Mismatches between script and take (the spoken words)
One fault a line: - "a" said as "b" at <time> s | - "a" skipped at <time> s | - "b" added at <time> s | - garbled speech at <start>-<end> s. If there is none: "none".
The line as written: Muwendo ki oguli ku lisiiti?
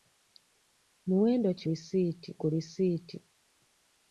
- "oguli" said as "lisiiti" at 1.7 s